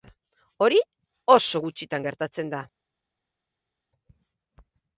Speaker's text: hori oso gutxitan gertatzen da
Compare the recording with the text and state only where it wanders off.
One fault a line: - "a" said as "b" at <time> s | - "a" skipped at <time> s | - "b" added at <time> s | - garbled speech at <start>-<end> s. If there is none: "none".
none